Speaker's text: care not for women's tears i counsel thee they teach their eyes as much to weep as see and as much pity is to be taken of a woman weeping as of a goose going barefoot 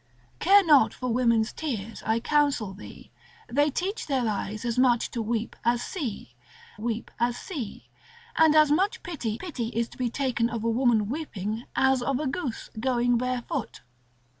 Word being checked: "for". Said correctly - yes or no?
yes